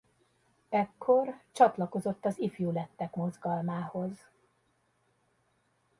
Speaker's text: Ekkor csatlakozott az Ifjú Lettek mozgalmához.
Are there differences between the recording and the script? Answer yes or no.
no